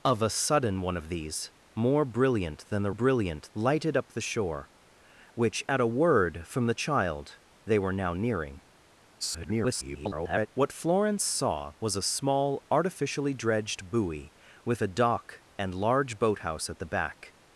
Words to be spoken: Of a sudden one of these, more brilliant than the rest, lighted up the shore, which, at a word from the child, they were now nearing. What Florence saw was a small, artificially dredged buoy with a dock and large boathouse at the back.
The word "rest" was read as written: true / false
false